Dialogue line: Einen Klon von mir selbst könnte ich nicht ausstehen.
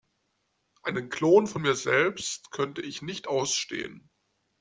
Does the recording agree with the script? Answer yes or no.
yes